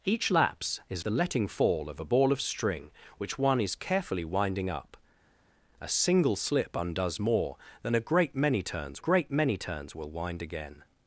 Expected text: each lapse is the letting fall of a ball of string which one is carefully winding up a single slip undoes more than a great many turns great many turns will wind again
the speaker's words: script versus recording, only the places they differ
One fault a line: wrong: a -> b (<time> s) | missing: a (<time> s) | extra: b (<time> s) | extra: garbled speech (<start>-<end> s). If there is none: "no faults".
no faults